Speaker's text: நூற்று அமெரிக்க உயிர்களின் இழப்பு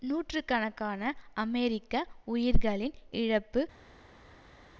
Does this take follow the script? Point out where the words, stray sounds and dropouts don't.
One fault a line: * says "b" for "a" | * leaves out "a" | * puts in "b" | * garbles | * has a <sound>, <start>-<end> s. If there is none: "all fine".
* puts in "கணக்கான"